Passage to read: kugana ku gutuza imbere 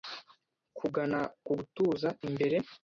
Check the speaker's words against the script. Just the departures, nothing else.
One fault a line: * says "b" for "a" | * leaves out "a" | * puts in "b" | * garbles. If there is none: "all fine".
all fine